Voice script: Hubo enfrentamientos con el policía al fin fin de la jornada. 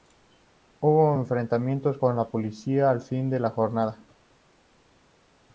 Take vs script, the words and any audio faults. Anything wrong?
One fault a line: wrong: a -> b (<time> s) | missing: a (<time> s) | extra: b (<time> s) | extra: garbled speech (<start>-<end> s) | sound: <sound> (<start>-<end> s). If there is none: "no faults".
wrong: el -> la (2.2 s)
missing: fin (3.3 s)